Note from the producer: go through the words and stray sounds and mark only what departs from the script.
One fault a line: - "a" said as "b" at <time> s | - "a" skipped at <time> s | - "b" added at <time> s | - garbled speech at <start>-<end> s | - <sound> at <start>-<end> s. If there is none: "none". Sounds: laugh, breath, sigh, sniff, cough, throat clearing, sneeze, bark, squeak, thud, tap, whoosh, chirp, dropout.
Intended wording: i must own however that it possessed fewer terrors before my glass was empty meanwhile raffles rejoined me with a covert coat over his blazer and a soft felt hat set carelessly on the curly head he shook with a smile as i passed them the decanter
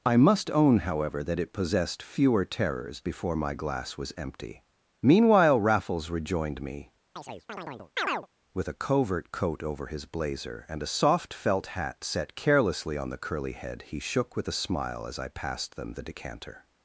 - chirp at 7.2-8.3 s